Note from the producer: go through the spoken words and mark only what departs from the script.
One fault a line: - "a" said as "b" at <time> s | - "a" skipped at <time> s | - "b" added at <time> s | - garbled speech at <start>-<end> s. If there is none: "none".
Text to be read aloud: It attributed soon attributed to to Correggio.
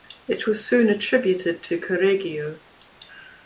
- "attributed" said as "was" at 0.5 s
- "to" skipped at 1.8 s